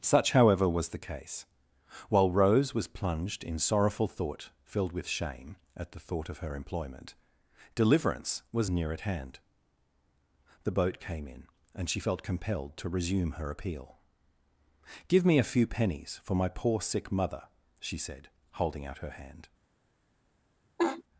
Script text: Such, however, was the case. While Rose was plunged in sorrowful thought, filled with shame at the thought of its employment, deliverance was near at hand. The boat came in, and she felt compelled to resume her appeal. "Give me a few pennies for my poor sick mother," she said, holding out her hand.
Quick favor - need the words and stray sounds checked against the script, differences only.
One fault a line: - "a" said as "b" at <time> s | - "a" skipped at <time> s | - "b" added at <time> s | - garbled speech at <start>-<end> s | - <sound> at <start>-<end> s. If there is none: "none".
- "its" said as "her" at 6.4 s
- laugh at 20.8-21.0 s